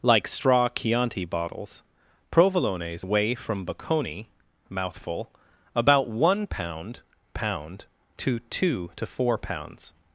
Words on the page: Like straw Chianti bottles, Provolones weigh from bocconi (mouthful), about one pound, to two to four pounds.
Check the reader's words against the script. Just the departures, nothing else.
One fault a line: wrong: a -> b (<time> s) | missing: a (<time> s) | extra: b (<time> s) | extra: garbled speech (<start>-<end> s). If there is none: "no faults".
extra: pound (7.3 s)